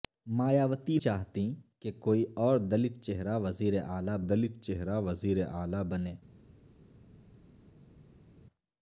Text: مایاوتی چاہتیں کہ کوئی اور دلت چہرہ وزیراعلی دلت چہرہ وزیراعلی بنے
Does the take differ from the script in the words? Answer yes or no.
no